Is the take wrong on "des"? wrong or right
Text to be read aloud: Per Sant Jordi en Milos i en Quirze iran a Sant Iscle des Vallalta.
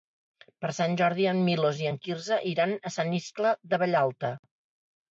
wrong